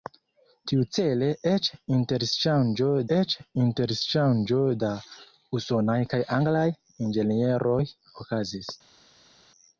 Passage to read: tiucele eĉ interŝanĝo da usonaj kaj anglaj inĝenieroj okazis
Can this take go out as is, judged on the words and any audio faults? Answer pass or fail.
fail